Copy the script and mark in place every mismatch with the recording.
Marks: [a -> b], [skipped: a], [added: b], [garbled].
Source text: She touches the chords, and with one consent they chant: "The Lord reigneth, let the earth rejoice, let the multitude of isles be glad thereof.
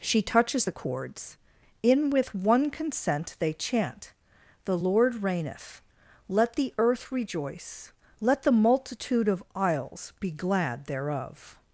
She touches the chords, [and -> in] with one consent they chant: "The Lord reigneth, let the earth rejoice, let the multitude of isles be glad thereof.